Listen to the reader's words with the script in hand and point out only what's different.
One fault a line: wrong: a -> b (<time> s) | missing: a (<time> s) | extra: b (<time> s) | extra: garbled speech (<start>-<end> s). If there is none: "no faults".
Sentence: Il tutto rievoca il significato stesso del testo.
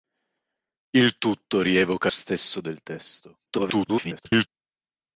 missing: il significato (2.1 s)
extra: garbled speech (3.5-4.5 s)